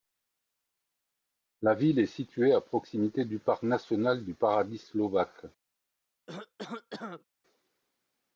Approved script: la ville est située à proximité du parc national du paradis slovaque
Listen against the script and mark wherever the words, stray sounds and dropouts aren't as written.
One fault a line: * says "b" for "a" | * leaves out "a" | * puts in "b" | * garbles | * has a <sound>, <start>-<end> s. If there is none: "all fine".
* has a cough, 6.3-7.2 s